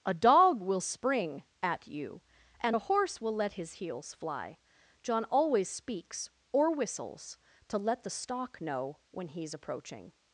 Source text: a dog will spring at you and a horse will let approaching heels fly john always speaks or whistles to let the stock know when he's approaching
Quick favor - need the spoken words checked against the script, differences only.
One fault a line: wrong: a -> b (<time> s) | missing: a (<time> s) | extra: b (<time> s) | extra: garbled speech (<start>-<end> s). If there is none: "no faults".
wrong: approaching -> his (3.5 s)